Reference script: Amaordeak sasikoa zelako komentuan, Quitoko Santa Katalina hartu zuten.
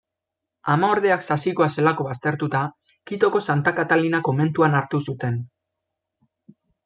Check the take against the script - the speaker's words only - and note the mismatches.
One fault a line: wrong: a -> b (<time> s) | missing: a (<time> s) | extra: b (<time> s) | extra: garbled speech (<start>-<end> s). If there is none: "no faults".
wrong: komentuan -> baztertuta (2.1 s)
extra: komentuan (4.3 s)